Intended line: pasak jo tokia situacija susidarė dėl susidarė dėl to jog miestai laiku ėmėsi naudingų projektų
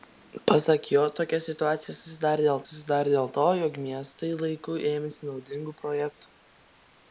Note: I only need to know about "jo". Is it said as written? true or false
true